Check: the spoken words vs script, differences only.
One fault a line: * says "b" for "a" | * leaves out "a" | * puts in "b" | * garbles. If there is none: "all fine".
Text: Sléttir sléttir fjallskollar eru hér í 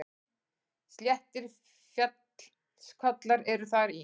* leaves out "sléttir"
* says "þar" for "hér"